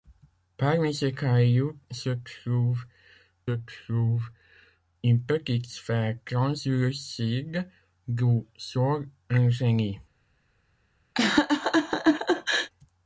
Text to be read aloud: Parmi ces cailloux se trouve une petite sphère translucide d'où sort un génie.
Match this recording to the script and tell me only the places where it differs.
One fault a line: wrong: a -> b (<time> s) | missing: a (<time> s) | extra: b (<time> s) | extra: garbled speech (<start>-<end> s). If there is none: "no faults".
extra: trouve (3.5 s)